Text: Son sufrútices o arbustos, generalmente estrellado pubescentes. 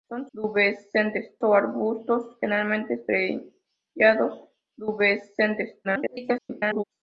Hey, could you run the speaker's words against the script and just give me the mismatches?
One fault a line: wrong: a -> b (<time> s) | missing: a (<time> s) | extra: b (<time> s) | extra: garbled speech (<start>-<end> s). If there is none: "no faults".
wrong: sufrútices -> pubescentes (0.3 s)
extra: garbled speech (5.8-6.8 s)